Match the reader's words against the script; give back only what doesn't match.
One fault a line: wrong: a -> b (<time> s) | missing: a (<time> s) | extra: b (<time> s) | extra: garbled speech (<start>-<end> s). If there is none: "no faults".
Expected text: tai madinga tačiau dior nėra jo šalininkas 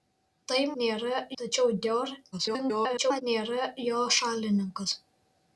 wrong: madinga -> nėra (0.8 s)
extra: garbled speech (2.3-3.2 s)